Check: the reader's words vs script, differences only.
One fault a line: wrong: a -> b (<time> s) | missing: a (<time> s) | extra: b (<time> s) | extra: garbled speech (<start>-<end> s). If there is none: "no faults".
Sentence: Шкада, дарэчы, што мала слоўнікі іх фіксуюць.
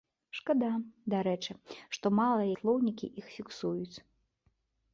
no faults